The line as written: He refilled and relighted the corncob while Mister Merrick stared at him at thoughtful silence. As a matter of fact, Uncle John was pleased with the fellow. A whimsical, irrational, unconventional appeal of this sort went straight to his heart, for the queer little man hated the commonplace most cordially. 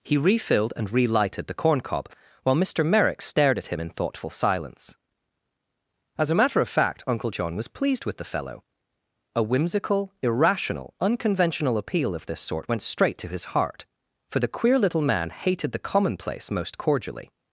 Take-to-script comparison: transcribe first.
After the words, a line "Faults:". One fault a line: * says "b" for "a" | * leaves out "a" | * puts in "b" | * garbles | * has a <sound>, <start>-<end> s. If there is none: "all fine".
He refilled and relighted the corncob while Mister Merrick stared at him in thoughtful silence. As a matter of fact, Uncle John was pleased with the fellow. A whimsical, irrational, unconventional appeal of this sort went straight to his heart, for the queer little man hated the commonplace most cordially.
Faults:
* says "in" for "at"